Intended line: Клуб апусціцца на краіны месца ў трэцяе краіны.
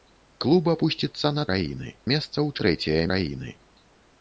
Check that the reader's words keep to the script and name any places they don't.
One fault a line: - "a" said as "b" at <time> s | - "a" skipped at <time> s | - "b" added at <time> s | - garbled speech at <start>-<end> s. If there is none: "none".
none